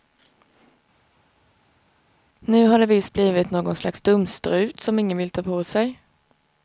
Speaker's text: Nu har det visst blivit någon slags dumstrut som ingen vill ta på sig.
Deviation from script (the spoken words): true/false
false